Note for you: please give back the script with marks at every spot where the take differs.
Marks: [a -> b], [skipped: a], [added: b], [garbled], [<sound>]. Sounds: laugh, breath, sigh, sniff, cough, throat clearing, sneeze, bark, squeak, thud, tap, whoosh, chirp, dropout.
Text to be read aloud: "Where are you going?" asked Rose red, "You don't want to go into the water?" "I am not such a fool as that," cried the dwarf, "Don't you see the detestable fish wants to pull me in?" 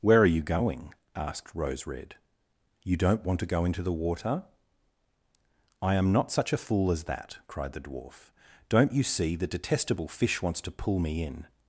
"Where are you going?" asked Rose red, "You don't want to go into the water?" "I am not such a fool as that," cried the dwarf, "Don't you see the detestable fish wants to pull me in?"